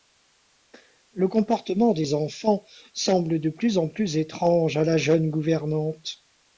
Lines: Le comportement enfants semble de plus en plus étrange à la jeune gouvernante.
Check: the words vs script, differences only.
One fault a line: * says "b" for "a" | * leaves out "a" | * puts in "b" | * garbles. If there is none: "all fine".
* puts in "des"